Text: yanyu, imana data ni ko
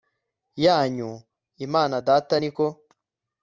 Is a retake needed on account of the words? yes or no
no